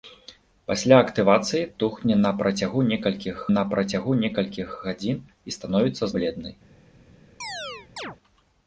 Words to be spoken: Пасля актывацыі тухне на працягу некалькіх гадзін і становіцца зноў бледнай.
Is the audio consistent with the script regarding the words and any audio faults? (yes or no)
no